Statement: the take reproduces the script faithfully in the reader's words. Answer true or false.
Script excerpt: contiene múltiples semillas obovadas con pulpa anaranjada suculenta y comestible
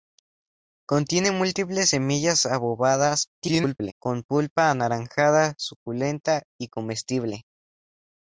false